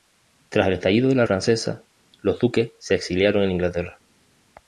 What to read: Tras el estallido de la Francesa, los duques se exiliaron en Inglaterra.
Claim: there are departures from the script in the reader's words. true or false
false